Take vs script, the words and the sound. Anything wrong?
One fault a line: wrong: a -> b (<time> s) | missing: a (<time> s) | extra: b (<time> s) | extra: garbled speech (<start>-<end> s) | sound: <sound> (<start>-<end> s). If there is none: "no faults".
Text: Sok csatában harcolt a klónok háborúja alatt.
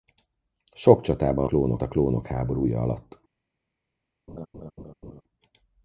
wrong: harcolt -> klónok (1.4 s)
sound: laugh (4.3-5.2 s)